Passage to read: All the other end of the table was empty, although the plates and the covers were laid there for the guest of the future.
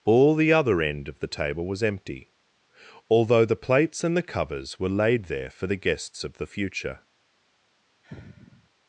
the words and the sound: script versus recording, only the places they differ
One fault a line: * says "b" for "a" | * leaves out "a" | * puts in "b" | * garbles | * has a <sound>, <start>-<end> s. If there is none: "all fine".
* says "guests" for "guest"
* has a sigh, 8.0-8.7 s